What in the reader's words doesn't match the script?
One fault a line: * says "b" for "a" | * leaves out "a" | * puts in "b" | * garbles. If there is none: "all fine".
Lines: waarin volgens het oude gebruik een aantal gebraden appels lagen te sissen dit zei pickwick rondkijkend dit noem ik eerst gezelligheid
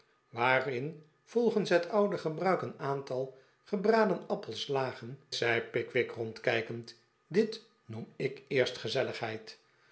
* leaves out "te sissen dit"